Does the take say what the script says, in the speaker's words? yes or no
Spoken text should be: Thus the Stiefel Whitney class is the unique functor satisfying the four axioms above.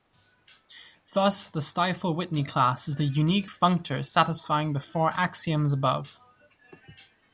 yes